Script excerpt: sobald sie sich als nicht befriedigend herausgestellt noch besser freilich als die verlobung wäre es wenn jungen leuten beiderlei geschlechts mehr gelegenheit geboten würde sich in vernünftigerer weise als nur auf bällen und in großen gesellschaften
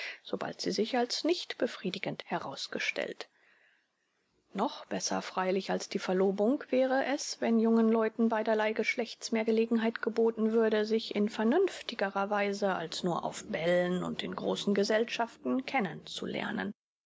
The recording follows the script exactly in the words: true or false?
true